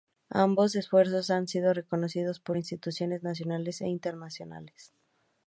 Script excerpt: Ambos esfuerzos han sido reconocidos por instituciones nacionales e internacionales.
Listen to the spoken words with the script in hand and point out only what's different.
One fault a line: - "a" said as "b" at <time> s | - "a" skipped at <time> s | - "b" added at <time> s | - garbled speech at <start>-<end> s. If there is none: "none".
none